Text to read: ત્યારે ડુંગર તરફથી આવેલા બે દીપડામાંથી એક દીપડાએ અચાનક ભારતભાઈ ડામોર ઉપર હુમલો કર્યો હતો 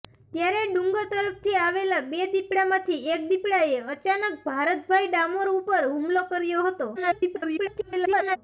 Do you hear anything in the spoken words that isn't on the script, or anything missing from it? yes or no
yes